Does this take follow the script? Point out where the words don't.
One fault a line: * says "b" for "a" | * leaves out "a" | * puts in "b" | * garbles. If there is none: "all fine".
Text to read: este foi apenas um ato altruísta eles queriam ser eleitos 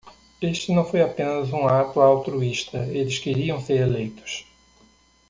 * puts in "não"